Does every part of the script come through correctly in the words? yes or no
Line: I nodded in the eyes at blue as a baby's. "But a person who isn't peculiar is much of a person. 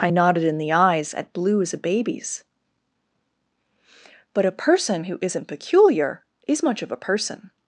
yes